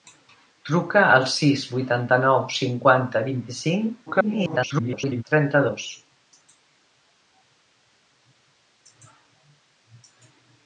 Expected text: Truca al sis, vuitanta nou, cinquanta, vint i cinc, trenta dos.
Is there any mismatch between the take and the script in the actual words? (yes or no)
yes